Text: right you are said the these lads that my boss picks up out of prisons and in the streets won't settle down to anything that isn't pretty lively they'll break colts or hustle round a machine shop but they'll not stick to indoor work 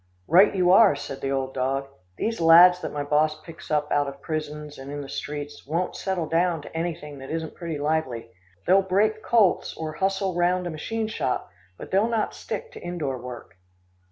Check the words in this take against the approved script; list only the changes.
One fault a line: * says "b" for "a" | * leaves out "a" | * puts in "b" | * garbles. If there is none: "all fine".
* puts in "old dog"